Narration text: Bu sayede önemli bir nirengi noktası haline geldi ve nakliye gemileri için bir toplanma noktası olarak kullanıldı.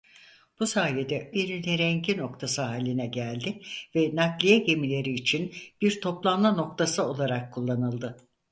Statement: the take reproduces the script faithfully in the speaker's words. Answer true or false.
false